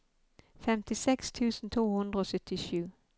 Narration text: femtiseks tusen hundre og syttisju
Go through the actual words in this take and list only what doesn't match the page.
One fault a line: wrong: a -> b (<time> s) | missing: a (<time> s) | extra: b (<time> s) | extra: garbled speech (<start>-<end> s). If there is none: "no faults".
extra: to (1.7 s)